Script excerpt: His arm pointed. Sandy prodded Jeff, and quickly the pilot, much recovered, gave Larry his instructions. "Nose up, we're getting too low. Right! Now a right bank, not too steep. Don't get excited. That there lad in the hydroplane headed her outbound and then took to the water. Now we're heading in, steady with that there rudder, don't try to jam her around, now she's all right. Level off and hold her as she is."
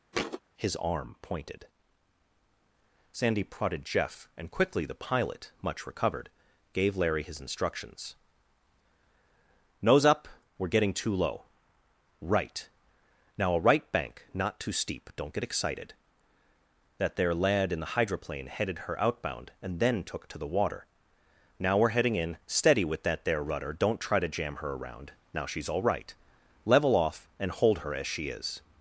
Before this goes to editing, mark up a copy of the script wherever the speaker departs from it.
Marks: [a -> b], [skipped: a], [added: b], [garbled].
His arm pointed. Sandy prodded Jeff, and quickly the pilot, much recovered, gave Larry his instructions. "Nose up, we're getting too low. Right! Now a right bank, not too steep. Don't get excited. That there lad in the hydroplane headed her outbound and then took to the water. Now we're heading in, steady with that there rudder, don't try to jam her around, now she's all right. Level off and hold her as she is."